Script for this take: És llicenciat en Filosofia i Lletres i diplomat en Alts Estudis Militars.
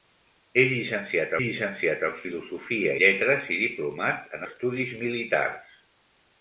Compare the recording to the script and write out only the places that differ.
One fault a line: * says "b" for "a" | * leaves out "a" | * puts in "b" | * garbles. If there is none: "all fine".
* puts in "llicenciat"
* leaves out "i"
* leaves out "Alts"